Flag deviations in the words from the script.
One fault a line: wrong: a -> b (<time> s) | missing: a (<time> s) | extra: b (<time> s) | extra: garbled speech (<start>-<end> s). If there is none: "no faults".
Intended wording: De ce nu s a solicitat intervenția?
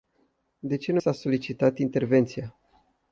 no faults